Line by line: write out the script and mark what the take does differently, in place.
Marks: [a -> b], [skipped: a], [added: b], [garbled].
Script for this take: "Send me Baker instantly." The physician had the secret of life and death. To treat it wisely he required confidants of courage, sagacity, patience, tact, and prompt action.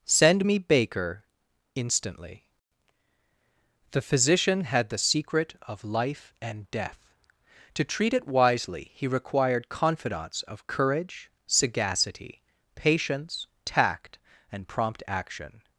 "Send me Baker instantly." The physician had the secret of life and death. To treat it wisely he required confidants of courage, sagacity, patience, tact, and prompt action.